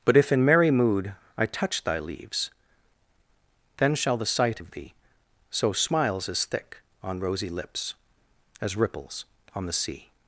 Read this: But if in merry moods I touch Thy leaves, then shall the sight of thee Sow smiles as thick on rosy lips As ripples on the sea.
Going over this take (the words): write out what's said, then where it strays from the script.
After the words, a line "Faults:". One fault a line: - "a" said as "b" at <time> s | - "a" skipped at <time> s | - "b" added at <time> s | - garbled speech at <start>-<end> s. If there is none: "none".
But if in merry mood I touch Thy leaves, then shall the sight of thee Sow smiles as thick on rosy lips As ripples on the sea.
Faults:
- "moods" said as "mood" at 0.7 s